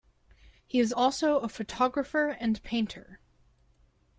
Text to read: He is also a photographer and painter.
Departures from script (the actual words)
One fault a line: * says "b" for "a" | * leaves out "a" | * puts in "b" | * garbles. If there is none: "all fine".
all fine